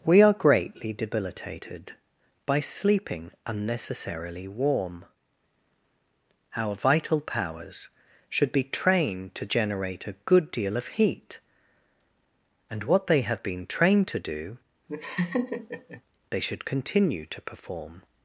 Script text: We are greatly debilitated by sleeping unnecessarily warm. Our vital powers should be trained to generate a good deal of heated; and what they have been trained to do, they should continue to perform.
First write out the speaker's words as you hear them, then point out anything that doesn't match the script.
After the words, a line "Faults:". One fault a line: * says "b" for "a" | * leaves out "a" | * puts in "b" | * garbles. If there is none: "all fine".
We are greatly debilitated by sleeping unnecessarily warm. Our vital powers should be trained to generate a good deal of heat; and what they have been trained to do, they should continue to perform.
Faults:
* says "heat" for "heated"